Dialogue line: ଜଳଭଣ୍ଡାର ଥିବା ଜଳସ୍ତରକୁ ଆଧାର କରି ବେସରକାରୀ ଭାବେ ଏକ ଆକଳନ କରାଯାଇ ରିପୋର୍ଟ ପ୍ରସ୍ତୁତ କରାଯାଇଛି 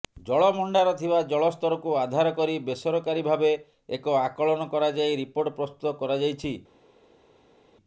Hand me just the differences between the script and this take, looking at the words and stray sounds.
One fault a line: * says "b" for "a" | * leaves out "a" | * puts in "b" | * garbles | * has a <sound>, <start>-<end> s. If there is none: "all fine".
all fine